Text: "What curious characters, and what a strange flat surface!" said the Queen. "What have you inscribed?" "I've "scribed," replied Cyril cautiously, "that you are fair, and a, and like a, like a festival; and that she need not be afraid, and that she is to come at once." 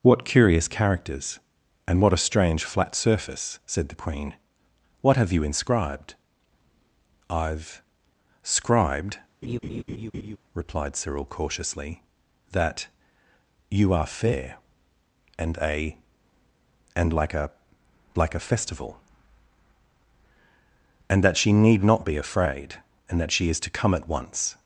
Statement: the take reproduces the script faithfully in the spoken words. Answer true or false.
true